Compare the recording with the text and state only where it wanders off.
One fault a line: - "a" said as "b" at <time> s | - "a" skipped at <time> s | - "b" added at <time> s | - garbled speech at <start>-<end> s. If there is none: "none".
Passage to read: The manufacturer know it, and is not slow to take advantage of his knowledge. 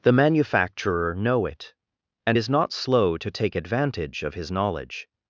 none